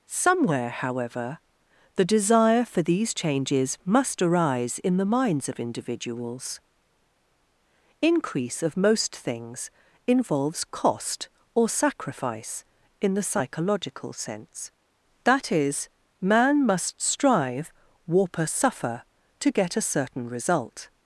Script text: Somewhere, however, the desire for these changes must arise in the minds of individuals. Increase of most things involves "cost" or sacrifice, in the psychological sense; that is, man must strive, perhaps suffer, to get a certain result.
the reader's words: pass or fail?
fail